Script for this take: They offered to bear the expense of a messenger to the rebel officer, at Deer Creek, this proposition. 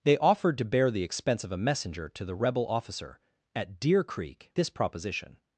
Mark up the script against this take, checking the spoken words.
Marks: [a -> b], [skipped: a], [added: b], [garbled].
They offered to bear the expense of a messenger to the rebel officer, at Deer Creek, this proposition.